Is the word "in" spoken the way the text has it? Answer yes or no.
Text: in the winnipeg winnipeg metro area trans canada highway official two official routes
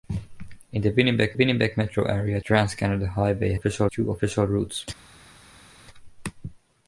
yes